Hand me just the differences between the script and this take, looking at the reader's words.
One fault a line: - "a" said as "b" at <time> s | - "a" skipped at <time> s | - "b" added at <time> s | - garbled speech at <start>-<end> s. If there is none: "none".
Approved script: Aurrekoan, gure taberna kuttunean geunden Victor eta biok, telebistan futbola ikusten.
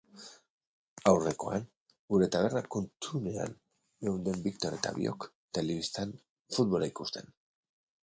none